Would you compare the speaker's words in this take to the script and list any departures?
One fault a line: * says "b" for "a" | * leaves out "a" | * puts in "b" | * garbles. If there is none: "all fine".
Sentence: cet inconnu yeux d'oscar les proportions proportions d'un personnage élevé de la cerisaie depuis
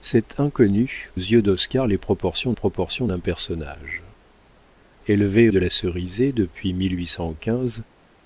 all fine